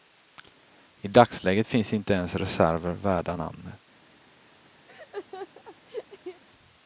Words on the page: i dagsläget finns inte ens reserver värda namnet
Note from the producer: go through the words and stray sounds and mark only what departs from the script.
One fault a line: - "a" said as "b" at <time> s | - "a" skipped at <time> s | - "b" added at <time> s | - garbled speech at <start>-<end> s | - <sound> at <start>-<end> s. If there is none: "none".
- laugh at 4.9-6.4 s